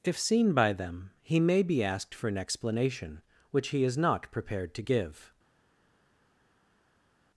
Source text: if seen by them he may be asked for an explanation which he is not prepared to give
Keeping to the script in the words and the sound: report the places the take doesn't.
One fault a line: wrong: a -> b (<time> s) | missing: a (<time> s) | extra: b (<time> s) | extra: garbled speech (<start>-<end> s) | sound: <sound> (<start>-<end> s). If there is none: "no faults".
no faults